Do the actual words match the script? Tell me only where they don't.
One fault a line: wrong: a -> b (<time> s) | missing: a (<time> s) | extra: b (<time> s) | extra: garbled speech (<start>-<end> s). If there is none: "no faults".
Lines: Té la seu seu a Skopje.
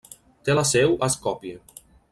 missing: seu (0.9 s)